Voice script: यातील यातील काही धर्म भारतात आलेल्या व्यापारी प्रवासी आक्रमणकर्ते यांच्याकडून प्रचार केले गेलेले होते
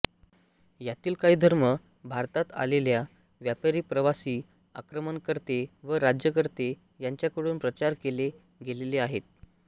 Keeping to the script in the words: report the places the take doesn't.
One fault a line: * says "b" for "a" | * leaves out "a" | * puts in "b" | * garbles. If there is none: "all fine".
* leaves out "यातील"
* puts in "व राज्यकर्ते"
* says "आहेत" for "होते"